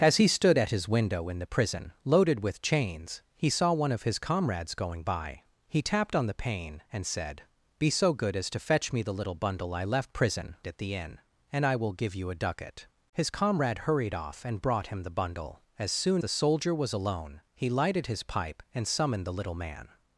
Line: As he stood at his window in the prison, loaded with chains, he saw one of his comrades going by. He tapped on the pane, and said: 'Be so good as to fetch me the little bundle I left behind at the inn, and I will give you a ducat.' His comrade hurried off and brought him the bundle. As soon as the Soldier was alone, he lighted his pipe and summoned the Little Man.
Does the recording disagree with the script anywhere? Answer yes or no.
yes